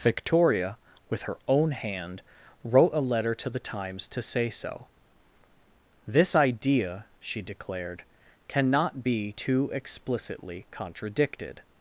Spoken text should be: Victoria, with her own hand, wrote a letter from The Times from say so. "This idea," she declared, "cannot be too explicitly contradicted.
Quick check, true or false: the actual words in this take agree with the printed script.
false